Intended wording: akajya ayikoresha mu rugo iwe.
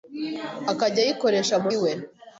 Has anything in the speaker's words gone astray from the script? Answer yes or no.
yes